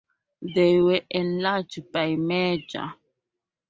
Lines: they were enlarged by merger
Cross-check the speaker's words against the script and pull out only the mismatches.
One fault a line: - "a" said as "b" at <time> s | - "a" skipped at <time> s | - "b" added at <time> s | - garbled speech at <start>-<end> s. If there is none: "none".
none